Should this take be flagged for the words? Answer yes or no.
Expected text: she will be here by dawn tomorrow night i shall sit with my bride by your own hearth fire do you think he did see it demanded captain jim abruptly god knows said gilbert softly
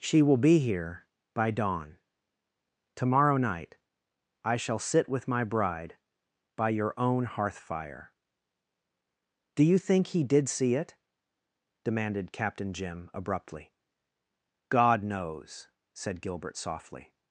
no